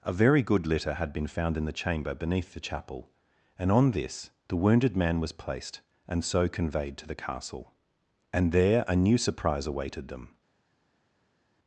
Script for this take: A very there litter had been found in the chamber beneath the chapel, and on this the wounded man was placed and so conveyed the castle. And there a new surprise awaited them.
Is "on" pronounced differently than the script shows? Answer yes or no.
no